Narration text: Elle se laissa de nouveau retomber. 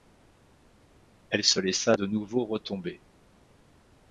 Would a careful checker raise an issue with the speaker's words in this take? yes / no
no